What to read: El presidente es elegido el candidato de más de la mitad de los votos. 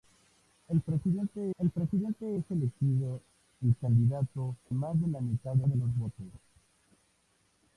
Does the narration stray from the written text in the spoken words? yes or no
yes